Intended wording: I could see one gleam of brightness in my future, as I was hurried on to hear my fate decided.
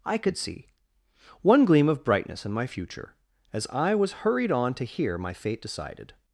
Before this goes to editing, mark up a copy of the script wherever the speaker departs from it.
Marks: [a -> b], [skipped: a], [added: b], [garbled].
I could see one gleam of brightness in my future, as I was hurried on to hear my fate decided.